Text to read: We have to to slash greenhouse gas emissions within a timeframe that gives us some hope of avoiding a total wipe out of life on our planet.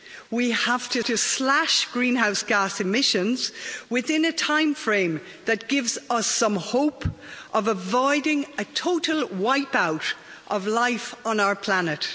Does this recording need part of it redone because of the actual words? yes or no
no